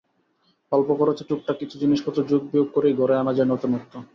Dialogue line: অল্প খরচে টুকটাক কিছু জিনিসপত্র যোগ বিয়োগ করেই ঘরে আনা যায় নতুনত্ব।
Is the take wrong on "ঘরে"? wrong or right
right